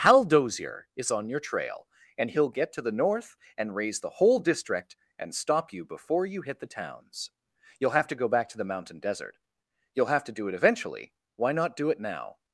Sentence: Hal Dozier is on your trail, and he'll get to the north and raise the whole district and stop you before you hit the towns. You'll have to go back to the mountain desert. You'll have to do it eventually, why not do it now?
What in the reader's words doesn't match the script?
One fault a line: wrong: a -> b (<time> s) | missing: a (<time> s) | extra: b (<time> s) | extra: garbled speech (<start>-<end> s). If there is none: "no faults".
no faults